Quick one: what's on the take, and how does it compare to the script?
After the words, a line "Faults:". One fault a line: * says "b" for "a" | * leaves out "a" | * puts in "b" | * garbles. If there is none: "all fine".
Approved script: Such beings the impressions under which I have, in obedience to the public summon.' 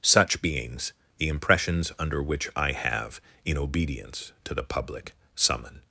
Such beings the impressions under which I have, in obedience to the public summon.'
Faults:
all fine